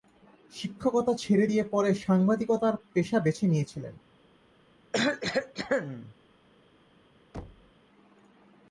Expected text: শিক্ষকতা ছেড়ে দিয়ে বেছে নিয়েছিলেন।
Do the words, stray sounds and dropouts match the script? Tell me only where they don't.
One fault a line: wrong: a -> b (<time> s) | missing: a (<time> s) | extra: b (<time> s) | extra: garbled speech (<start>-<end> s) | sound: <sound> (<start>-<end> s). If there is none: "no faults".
extra: পরে সাংবাদিকতার পেশা (1.6 s)
sound: cough (4.9-6.1 s)
sound: thud (7.3-7.7 s)